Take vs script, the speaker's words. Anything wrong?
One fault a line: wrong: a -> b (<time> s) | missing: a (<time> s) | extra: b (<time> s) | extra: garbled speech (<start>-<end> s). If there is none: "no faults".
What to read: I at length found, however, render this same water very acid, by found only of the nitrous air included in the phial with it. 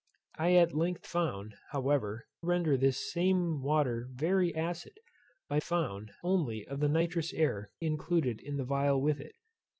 no faults